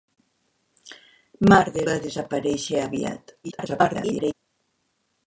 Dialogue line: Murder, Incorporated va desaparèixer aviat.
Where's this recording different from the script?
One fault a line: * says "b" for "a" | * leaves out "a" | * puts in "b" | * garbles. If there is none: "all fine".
* leaves out "Incorporated"
* garbles